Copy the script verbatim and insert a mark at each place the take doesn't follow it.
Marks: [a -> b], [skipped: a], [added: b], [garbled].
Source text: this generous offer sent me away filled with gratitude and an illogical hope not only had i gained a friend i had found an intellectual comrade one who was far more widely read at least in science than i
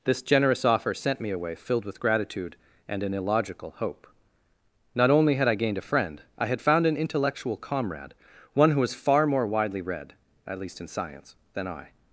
this generous offer sent me away filled with gratitude and an illogical hope not only had i gained a friend i had found an intellectual comrade one who was far more widely read at least in science than i